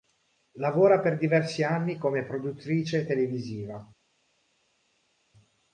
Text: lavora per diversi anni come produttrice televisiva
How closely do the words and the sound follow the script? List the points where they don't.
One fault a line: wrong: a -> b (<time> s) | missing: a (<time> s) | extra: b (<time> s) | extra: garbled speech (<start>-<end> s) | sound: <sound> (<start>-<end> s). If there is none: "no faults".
no faults